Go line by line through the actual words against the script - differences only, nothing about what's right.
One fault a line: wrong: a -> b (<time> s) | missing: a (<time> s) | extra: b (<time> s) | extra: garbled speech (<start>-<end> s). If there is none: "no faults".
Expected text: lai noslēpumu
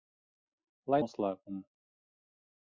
no faults